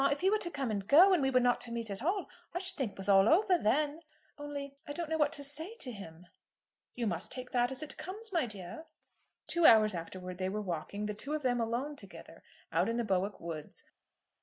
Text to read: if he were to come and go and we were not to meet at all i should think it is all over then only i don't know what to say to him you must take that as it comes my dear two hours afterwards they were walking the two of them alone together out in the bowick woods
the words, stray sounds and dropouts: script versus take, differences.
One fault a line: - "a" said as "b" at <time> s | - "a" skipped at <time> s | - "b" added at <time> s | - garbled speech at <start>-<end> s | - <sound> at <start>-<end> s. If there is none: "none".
- "is" said as "was" at 3.0 s